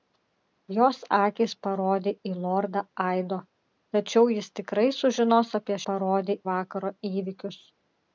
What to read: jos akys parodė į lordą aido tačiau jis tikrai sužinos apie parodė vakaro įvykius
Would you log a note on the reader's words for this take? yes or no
no